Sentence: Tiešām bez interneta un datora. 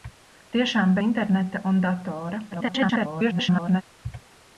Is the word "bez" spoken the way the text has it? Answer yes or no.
no